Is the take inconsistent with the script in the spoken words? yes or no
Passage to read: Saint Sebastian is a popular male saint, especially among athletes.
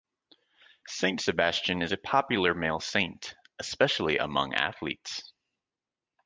no